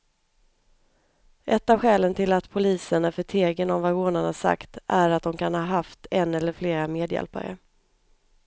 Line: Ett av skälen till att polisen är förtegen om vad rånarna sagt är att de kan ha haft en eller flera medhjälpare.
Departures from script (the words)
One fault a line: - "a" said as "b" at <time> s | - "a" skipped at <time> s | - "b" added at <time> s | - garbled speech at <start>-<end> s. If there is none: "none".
none